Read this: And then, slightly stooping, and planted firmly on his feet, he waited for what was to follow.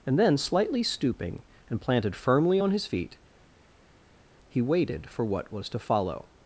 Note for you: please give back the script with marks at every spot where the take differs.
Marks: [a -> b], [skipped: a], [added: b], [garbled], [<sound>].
And then, slightly stooping, and planted firmly on his feet, he waited for what was to follow.